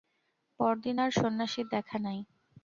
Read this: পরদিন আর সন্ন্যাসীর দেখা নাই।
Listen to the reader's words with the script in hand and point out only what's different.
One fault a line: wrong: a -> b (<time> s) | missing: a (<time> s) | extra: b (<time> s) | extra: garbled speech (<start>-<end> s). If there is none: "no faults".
no faults